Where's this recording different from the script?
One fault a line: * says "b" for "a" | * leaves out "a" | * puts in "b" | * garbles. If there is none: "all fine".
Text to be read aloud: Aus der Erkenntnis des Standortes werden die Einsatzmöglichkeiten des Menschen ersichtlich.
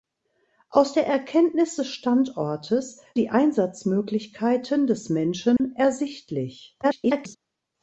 * leaves out "werden"
* garbles